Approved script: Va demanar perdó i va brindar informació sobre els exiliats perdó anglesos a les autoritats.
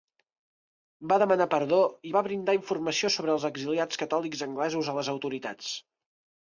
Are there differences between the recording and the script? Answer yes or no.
yes